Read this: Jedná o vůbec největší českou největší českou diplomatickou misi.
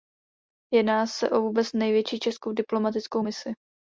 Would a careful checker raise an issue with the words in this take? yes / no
yes